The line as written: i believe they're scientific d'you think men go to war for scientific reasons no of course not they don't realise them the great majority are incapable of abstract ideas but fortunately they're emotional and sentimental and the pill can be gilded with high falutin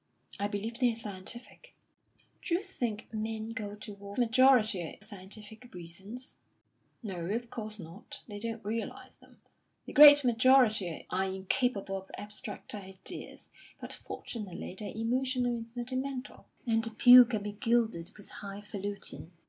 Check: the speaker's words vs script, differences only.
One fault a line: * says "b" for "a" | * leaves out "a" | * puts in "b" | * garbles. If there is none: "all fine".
* says "majority" for "for"